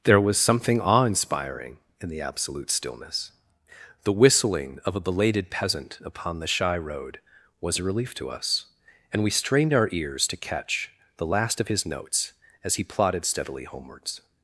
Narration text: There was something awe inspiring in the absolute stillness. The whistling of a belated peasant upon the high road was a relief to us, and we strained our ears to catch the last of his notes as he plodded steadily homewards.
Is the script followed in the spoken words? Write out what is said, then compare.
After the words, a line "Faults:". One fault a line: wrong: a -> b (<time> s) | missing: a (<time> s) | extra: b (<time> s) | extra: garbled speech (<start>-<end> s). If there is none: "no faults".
There was something awe inspiring in the absolute stillness. The whistling of a belated peasant upon the shy road was a relief to us, and we strained our ears to catch the last of his notes as he plodded steadily homewards.
Faults:
wrong: high -> shy (6.5 s)